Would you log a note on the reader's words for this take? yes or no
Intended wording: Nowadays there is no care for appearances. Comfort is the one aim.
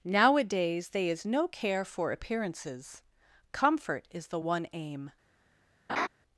yes